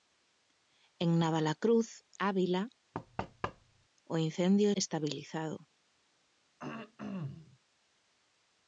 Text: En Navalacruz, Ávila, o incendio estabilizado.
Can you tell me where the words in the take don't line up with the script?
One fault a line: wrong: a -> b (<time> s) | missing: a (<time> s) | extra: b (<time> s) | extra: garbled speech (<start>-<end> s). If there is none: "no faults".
no faults